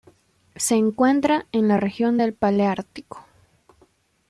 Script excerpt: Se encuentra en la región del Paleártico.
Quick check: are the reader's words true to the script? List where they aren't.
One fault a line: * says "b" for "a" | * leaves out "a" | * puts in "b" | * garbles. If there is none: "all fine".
all fine